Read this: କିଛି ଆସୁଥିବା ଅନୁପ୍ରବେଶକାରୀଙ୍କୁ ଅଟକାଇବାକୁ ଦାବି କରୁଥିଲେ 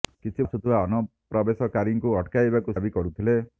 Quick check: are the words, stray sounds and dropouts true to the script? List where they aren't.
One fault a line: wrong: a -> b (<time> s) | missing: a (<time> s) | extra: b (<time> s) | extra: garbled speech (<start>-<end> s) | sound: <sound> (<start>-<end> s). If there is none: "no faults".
no faults